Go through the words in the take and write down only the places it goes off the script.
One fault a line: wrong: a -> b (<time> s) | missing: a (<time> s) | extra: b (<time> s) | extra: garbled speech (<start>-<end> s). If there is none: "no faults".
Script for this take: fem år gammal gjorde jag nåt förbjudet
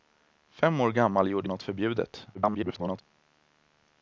missing: jag (1.5 s)
extra: garbled speech (2.3-3.0 s)